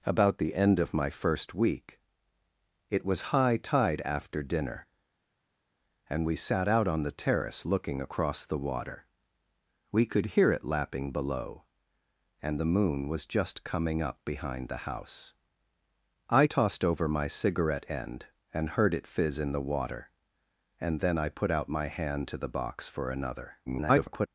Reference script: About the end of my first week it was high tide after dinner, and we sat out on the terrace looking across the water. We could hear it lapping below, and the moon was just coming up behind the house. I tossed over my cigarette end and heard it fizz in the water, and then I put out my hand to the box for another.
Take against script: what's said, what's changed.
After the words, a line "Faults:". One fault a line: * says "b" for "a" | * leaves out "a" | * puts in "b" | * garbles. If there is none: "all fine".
About the end of my first week it was high tide after dinner, and we sat out on the terrace looking across the water. We could hear it lapping below, and the moon was just coming up behind the house. I tossed over my cigarette end and heard it fizz in the water, and then I put out my hand to the box for another. [garbled]
Faults:
* garbles